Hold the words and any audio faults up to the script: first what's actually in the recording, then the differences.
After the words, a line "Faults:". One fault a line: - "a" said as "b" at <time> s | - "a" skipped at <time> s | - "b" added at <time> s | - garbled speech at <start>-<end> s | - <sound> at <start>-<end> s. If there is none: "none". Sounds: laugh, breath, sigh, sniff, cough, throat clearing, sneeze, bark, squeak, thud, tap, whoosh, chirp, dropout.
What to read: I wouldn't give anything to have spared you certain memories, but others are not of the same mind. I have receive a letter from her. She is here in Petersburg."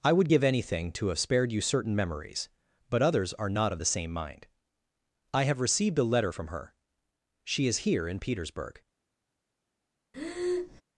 I would give anything to have spared you certain memories, but others are not of the same mind. I have received a letter from her. She is here in Petersburg."
Faults:
- "wouldn't" said as "would" at 0.1 s
- "receive" said as "received" at 5.6 s
- breath at 10.1-10.8 s